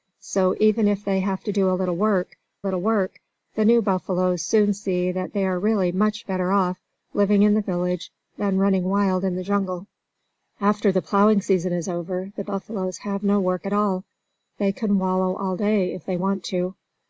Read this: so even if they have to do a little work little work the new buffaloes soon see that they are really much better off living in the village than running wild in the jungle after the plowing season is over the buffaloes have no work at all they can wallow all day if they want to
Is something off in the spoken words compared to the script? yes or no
no